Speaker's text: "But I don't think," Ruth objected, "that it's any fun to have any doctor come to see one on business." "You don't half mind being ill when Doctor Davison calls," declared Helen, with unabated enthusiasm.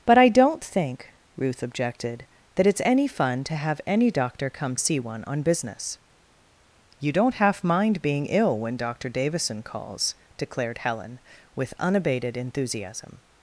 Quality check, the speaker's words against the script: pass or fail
fail